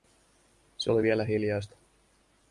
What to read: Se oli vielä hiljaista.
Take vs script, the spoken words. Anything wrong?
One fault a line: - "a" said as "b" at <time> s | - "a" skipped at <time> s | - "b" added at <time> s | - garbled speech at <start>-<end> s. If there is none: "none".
none